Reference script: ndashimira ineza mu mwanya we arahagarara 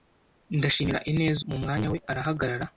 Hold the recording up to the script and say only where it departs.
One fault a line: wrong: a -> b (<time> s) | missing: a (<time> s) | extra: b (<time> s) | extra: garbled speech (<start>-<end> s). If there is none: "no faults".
no faults